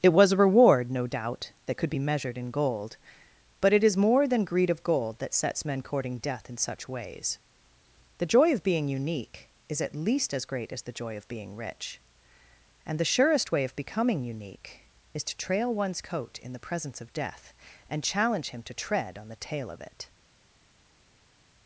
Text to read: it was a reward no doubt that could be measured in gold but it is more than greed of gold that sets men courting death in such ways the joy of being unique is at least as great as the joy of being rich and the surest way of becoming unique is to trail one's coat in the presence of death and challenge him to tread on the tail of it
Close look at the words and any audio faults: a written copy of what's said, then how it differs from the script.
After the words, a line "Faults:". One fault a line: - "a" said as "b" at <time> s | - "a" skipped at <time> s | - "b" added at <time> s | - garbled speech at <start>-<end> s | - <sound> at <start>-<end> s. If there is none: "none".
it was a reward no doubt that could be measured in gold but it is more than greed of gold that sets men courting death in such ways the joy of being unique is at least as great as the joy of being rich and the surest way of becoming unique is to trail one's coat in the presence of death and challenge him to tread on the tail of it
Faults:
none